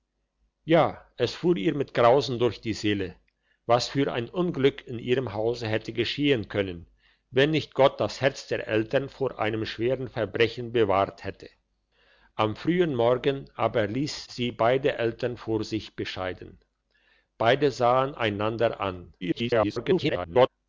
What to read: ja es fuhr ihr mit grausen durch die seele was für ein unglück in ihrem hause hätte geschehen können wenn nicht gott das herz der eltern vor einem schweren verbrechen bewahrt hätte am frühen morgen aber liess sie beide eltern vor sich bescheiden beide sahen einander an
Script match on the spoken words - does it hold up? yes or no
no